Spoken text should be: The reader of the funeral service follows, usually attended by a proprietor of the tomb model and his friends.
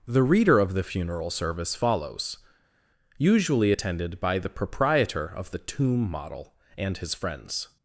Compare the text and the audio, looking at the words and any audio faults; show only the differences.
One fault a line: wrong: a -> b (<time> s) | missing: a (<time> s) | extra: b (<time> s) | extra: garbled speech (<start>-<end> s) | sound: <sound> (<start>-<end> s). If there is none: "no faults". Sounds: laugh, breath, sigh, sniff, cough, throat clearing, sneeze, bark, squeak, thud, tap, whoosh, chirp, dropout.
wrong: a -> the (4.4 s)